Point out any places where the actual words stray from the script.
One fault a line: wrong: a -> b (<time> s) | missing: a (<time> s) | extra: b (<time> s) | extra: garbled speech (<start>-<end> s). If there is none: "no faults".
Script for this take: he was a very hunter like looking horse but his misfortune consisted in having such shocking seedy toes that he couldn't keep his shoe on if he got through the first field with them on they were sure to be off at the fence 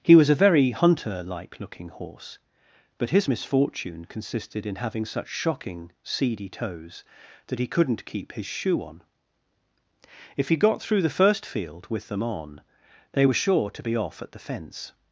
no faults